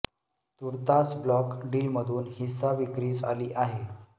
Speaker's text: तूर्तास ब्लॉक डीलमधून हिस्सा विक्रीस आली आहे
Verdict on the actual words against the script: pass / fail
pass